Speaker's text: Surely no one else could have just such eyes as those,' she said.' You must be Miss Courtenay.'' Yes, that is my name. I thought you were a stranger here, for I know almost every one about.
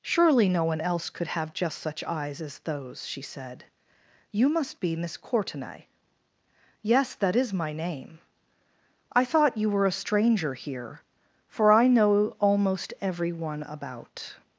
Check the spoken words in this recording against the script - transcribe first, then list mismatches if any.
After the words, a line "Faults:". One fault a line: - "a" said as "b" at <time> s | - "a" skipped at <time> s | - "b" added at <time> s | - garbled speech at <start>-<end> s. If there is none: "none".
Surely no one else could have just such eyes as those,' she said.' You must be Miss Courtenay.'' Yes, that is my name. I thought you were a stranger here, for I know almost every one about.
Faults:
none